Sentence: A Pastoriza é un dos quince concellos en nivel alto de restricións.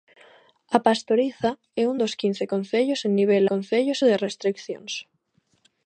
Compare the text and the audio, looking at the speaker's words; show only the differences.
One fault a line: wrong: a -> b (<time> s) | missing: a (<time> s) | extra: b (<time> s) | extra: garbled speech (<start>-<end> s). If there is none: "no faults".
wrong: alto -> concellos (3.5 s)